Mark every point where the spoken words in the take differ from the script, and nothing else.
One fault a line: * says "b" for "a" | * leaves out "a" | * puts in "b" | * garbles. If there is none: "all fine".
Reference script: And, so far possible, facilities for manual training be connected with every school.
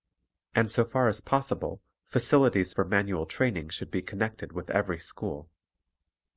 * puts in "as"
* puts in "should"